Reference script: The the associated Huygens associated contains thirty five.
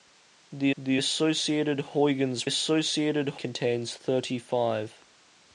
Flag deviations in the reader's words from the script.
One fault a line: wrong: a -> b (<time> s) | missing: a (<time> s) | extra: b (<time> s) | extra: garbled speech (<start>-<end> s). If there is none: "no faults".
no faults